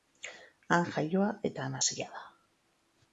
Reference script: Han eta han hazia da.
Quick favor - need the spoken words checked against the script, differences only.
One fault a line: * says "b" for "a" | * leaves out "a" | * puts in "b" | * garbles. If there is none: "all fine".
* puts in "jaioa"